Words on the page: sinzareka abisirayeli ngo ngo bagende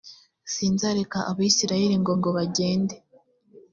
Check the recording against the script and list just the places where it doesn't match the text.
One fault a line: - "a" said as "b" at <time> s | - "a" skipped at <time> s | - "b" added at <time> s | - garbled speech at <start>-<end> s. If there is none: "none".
none